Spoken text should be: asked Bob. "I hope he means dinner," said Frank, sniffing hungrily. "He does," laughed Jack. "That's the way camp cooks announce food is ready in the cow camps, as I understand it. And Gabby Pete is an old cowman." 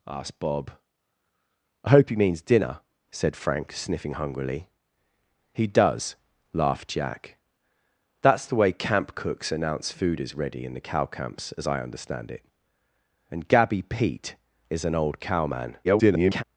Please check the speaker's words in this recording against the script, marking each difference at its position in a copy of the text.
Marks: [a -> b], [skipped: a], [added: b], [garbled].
asked Bob. "I hope he means dinner," said Frank, sniffing hungrily. "He does," laughed Jack. "That's the way camp cooks announce food is ready in the cow camps, as I understand it. And Gabby Pete is an old cowman." [garbled]